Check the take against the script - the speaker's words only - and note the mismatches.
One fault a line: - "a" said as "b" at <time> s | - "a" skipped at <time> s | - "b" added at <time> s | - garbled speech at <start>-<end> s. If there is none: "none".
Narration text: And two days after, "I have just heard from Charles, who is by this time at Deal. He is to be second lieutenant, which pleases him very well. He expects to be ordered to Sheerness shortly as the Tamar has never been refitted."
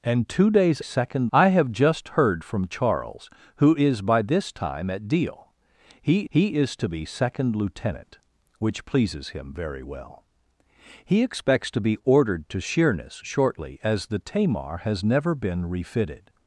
- "after" said as "second" at 0.8 s
- "he" added at 6.3 s